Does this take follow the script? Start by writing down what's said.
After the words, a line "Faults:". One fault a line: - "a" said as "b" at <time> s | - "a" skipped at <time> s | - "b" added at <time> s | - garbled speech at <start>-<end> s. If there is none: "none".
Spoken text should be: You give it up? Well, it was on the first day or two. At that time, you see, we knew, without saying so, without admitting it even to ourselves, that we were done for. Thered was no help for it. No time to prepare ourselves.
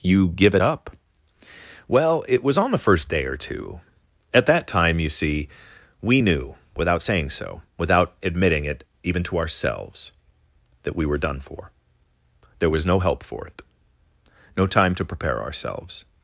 You give it up? Well, it was on the first day or two. At that time, you see, we knew, without saying so, without admitting it even to ourselves, that we were done for. There was no help for it. No time to prepare ourselves.
Faults:
- "Thered" said as "There" at 12.6 s